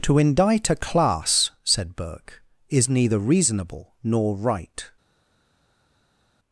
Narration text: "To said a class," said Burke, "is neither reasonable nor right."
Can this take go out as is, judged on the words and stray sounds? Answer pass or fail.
fail